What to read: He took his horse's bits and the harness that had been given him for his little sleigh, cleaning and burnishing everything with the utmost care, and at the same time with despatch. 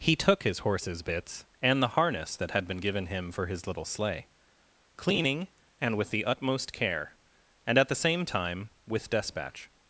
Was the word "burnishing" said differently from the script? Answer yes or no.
yes